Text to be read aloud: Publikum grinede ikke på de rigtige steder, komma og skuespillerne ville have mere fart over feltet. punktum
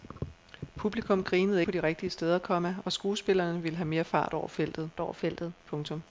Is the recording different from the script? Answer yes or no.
yes